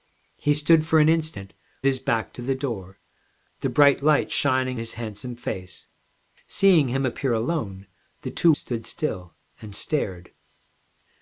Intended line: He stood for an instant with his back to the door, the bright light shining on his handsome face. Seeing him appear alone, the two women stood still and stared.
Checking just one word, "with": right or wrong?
wrong